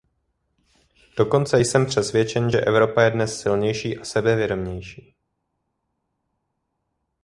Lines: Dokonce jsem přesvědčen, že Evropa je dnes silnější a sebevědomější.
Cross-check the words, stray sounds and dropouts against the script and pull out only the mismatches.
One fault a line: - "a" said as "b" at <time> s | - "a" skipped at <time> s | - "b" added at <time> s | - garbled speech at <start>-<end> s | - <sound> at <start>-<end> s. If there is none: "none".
none